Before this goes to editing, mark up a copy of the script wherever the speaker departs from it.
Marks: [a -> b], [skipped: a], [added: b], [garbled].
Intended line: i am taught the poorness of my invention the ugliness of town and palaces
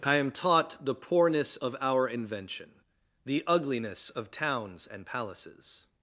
i am taught the poorness of [my -> our] invention the ugliness of [town -> towns] and palaces